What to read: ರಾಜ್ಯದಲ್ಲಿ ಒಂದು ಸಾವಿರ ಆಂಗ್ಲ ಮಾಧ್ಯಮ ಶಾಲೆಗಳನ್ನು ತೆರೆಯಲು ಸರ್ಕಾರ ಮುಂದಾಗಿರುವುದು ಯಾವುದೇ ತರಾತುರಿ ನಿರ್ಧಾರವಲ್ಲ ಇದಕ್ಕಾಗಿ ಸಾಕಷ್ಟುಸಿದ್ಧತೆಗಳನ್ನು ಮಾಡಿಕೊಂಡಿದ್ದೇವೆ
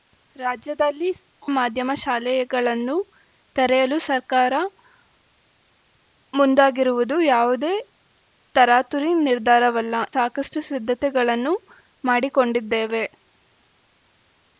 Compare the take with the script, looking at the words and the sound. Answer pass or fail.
fail